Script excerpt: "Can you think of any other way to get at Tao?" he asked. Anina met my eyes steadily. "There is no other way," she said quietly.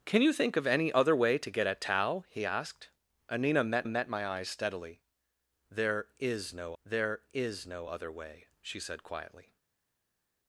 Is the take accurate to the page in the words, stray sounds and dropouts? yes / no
no